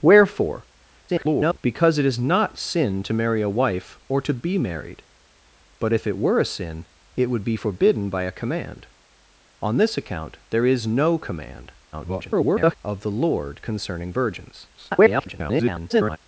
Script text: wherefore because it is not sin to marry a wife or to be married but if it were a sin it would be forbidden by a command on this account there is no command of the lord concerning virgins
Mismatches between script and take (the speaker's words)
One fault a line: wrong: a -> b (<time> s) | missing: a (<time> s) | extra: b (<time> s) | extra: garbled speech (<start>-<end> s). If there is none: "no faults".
extra: garbled speech (1.1-1.6 s)
extra: garbled speech (11.9-12.8 s)
extra: garbled speech (14.8-16.2 s)